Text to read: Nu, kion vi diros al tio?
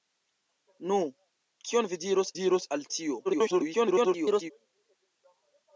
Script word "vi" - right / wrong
right